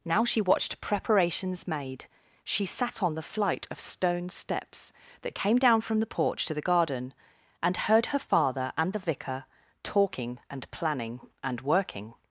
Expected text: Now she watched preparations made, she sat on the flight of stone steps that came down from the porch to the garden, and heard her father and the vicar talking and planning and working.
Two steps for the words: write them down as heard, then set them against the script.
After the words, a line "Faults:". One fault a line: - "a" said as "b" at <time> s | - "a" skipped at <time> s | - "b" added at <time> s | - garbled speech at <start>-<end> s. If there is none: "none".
Now she watched preparations made, she sat on the flight of stone steps that came down from the porch to the garden, and heard her father and the vicar talking and planning and working.
Faults:
none